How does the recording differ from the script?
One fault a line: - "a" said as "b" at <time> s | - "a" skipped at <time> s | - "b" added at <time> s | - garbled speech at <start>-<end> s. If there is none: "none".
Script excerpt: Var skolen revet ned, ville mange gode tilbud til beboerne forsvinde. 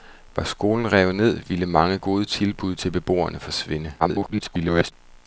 - garbled speech at 4.0-4.9 s